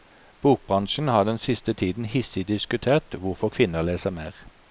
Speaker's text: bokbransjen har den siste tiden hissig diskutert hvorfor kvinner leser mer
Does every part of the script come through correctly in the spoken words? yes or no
yes